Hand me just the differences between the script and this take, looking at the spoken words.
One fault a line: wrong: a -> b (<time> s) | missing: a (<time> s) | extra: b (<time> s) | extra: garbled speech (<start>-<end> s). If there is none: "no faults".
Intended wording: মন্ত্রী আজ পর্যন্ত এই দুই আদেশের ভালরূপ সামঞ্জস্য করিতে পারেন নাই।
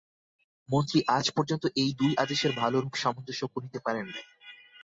no faults